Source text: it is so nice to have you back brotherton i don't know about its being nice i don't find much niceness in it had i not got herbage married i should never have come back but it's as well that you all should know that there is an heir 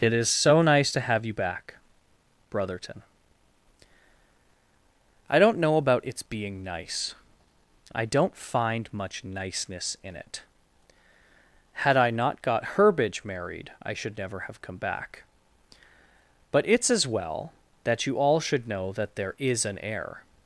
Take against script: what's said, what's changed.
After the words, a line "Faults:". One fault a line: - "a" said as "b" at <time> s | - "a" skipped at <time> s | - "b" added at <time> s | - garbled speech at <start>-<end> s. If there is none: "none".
it is so nice to have you back brotherton i don't know about its being nice i don't find much niceness in it had i not got herbage married i should never have come back but it's as well that you all should know that there is an heir
Faults:
none